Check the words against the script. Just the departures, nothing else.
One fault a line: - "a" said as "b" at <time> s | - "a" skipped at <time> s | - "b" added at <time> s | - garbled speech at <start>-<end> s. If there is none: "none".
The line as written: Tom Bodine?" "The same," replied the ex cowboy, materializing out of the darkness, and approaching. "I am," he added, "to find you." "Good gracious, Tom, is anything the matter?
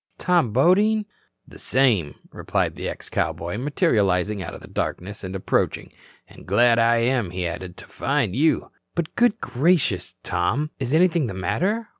- "And glad" added at 6.3 s
- "But" added at 8.9 s